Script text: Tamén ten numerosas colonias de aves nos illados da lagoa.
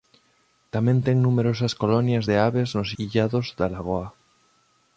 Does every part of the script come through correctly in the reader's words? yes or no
yes